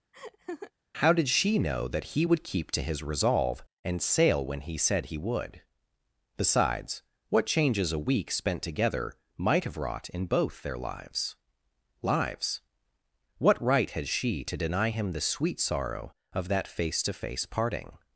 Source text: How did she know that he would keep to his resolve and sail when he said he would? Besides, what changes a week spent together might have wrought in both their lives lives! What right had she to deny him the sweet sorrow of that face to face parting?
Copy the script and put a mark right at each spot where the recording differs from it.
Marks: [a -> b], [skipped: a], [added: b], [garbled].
How did she know that he would keep to his resolve and sail when he said he would? Besides, what changes a week spent together might have wrought in both their lives lives! What right had she to deny him the sweet sorrow of that face to face parting?